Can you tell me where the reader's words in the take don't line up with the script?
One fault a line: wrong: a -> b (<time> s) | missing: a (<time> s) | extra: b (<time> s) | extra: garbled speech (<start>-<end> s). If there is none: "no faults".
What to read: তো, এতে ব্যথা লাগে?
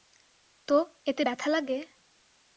no faults